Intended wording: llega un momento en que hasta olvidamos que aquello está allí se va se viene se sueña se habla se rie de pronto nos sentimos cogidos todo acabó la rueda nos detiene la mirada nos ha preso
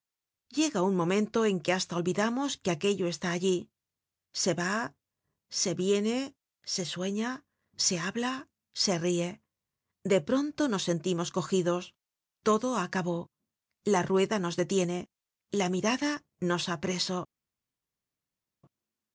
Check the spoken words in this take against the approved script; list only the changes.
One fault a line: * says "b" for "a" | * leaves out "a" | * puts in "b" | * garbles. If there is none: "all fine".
all fine